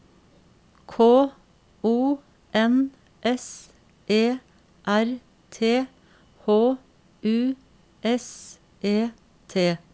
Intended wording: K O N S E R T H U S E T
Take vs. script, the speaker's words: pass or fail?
pass